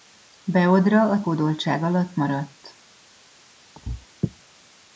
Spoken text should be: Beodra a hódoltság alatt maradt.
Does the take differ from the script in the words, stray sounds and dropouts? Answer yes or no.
yes